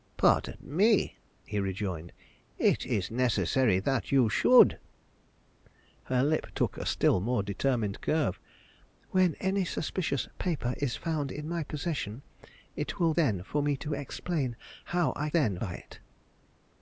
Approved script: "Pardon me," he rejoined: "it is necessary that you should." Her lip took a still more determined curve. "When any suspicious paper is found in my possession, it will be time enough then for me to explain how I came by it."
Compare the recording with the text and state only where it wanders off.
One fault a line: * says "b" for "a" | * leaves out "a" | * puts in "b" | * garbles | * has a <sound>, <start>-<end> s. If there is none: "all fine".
* leaves out "be time enough"
* says "then" for "came"